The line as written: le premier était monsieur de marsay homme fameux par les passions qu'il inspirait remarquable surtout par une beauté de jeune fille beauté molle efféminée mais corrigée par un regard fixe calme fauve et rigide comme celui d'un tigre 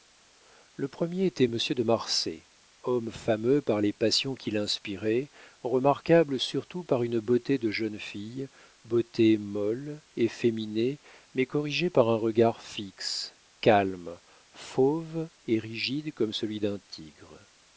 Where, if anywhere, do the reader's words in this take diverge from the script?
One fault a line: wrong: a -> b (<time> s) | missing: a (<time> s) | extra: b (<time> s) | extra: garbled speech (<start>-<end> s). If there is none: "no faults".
no faults